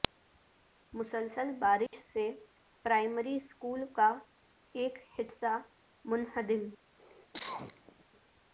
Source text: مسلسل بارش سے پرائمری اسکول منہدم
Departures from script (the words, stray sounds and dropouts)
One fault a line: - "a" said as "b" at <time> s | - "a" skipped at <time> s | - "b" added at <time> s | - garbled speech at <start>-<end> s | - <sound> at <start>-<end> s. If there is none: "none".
- dropout at 1.9-1.9 s
- "کا ایک حصہ" added at 3.9 s
- cough at 7.0-8.0 s